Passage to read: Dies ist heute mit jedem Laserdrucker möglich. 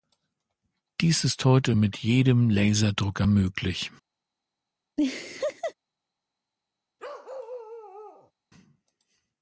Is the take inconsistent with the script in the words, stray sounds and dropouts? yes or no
yes